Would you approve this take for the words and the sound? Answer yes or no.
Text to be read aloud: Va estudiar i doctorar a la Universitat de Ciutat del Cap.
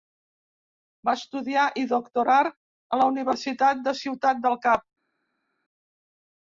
yes